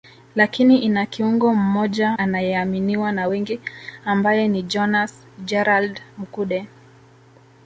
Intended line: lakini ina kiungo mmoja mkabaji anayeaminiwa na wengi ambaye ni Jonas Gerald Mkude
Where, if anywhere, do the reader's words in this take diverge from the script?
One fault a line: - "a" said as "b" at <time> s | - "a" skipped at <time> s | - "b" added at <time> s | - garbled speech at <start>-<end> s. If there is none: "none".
- "mkabaji" skipped at 2.2 s